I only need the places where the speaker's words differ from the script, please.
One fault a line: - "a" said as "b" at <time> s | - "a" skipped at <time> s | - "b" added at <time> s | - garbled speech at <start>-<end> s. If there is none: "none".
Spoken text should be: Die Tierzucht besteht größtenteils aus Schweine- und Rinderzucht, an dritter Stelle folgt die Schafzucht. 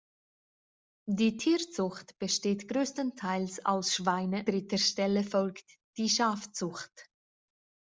- "und Rinderzucht an" skipped at 4.5 s